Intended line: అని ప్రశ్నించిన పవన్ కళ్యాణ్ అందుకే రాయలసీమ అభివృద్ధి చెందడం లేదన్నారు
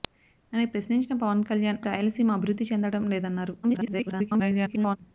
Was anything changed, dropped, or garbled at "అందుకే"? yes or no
yes